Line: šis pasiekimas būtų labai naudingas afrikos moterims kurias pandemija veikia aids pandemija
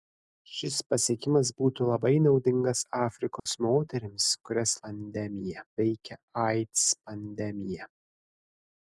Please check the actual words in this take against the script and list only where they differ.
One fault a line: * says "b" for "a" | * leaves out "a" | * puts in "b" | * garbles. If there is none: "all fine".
all fine